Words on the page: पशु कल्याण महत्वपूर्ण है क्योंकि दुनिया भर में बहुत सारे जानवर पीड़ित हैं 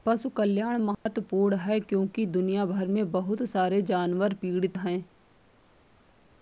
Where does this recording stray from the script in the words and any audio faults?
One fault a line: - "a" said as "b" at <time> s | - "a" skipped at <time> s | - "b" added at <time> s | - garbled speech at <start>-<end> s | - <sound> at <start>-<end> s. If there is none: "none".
- dropout at 0.9-1.1 s